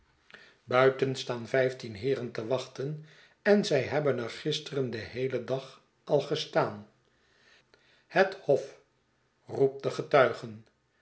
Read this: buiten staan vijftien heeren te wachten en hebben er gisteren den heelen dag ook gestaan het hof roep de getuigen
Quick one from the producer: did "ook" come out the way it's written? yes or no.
no